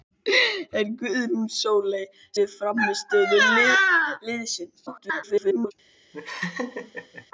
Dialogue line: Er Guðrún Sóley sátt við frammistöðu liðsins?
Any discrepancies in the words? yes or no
yes